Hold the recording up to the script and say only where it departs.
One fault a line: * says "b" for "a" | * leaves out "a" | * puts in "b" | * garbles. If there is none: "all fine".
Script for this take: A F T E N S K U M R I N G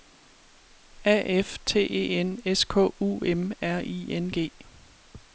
all fine